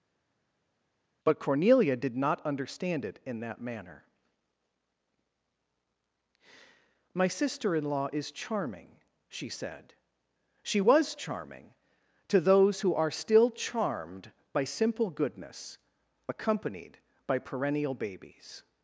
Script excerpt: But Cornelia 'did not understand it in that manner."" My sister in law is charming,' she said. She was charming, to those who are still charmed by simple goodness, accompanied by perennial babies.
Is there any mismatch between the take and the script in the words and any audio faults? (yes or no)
no